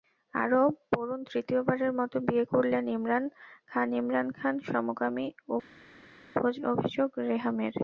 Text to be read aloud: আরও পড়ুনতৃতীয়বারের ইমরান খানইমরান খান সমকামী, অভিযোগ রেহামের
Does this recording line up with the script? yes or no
no